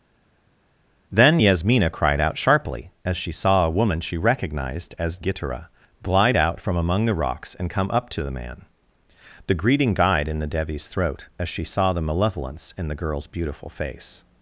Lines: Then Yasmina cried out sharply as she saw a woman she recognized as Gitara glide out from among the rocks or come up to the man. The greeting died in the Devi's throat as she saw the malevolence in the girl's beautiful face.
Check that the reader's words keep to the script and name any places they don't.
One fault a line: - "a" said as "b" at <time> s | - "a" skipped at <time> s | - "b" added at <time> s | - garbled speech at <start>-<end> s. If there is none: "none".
- "or" said as "and" at 7.5 s